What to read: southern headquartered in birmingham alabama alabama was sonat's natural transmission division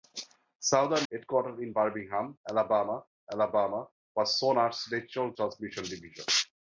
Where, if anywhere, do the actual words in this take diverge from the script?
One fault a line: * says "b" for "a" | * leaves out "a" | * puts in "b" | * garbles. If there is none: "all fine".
all fine